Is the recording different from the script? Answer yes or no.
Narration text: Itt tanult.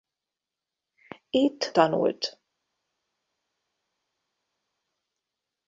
no